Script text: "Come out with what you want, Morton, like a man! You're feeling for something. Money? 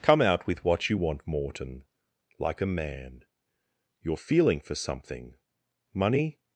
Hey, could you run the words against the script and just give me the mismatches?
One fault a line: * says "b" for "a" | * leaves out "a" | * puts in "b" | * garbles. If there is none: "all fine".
all fine